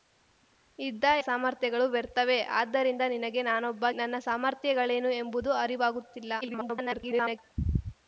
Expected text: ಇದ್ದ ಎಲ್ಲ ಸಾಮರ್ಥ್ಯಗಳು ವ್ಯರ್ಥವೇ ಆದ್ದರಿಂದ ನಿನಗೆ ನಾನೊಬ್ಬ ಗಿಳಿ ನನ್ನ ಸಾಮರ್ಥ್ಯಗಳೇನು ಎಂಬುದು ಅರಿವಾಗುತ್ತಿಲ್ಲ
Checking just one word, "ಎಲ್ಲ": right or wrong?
wrong